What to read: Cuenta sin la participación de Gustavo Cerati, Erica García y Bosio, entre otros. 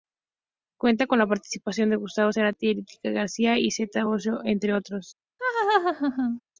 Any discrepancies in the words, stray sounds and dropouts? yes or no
yes